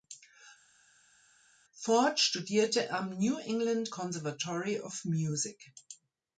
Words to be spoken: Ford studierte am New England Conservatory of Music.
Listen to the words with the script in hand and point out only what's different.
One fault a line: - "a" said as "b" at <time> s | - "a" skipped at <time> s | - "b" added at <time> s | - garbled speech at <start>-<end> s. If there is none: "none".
none